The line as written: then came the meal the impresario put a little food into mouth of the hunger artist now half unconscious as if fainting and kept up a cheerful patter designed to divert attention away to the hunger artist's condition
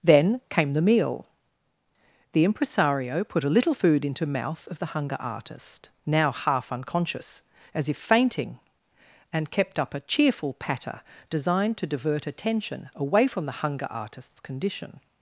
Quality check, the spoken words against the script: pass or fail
fail